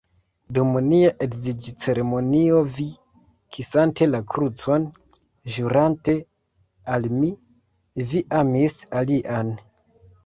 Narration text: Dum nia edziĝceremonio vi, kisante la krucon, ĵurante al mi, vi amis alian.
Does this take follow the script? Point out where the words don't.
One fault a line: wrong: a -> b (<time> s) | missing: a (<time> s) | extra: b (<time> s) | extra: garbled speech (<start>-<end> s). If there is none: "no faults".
no faults